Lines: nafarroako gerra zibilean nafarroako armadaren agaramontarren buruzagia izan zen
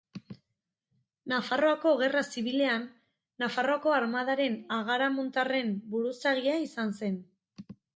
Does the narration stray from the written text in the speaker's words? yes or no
no